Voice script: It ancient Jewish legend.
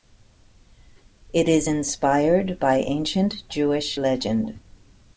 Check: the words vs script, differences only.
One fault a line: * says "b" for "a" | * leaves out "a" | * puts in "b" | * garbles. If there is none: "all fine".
* puts in "is inspired by"